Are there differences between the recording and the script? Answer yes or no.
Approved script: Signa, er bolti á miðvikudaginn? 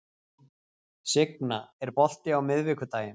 no